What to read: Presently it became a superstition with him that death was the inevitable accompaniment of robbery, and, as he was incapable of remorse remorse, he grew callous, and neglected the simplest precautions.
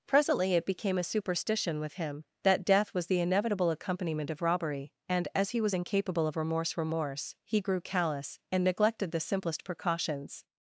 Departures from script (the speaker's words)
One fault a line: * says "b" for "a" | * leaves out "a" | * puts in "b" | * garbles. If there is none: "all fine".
all fine